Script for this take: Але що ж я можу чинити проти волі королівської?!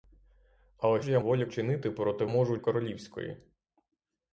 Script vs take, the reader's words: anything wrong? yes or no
yes